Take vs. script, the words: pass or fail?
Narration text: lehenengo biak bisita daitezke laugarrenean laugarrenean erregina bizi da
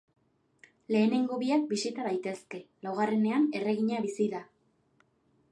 fail